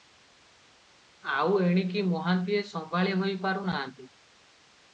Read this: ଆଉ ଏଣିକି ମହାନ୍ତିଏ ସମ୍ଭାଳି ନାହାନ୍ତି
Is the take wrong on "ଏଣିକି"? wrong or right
right